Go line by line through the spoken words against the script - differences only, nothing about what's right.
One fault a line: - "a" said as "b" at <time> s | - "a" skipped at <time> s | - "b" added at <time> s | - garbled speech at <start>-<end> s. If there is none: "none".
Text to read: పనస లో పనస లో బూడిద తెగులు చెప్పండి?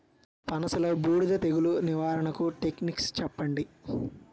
- "పనస లో బూడిద తెగులు" said as "బూడిద తెగులు నివారణకు టెక్నిక్స్" at 1.0 s